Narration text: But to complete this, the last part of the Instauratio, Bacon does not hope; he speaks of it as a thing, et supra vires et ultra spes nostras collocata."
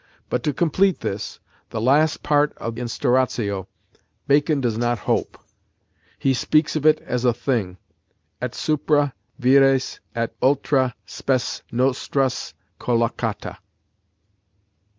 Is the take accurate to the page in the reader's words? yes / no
no